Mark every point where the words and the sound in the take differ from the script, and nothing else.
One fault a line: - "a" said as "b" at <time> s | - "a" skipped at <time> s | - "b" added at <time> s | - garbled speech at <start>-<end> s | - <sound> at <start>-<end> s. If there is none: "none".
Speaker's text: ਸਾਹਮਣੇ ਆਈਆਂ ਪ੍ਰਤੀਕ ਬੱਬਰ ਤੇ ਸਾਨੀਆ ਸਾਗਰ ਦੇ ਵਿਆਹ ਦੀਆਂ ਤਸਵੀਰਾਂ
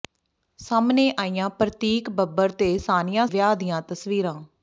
- "ਸਾਗਰ ਦੇ" skipped at 3.3 s